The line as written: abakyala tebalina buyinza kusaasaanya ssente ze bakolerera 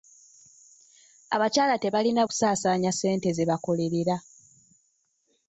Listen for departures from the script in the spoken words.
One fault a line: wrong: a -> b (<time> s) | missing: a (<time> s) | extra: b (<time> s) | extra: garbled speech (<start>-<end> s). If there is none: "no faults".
missing: buyinza (2.2 s)